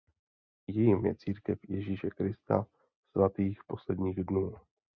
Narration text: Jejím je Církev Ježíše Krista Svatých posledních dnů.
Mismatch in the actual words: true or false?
false